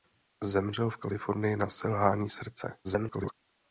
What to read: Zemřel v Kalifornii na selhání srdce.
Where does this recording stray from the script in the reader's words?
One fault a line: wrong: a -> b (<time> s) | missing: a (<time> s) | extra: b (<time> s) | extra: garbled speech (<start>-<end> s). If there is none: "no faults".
extra: garbled speech (2.8-3.3 s)